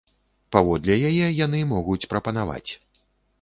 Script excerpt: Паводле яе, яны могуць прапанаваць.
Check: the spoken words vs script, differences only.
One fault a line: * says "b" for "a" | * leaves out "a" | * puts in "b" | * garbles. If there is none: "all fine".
all fine